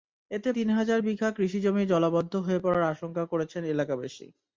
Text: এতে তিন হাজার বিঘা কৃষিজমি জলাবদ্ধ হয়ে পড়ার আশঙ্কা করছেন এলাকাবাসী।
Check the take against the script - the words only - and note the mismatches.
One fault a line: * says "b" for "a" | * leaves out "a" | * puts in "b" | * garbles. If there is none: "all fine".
all fine